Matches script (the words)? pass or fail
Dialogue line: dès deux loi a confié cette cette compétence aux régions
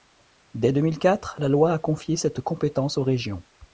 fail